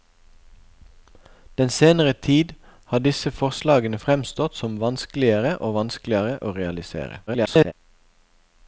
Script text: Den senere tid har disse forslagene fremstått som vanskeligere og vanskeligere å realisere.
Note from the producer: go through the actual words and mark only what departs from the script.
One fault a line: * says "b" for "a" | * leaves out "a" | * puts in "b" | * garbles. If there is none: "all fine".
* garbles